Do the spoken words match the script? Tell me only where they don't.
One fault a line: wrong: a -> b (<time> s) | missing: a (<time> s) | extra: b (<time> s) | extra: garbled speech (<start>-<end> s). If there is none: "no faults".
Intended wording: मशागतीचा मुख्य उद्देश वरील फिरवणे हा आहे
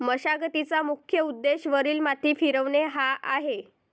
extra: माती (2.0 s)